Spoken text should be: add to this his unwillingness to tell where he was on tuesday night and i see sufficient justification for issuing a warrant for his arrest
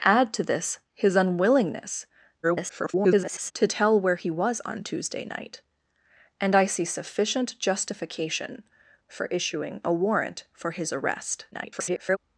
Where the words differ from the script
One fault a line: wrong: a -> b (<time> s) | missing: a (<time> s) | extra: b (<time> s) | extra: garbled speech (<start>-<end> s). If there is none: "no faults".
extra: garbled speech (2.4-3.5 s)
extra: garbled speech (11.5-12.2 s)